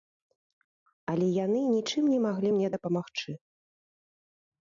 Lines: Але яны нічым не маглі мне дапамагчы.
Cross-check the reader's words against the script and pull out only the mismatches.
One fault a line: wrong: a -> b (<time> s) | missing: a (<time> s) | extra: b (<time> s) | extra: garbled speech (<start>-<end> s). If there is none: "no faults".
no faults